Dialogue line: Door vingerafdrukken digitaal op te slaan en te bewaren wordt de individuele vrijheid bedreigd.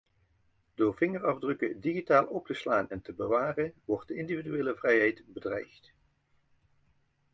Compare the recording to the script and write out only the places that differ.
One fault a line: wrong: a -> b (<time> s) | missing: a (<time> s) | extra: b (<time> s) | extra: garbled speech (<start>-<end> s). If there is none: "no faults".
no faults